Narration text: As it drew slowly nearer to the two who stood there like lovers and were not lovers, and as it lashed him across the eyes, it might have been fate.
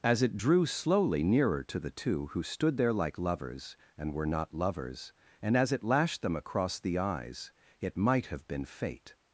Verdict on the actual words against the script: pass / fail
fail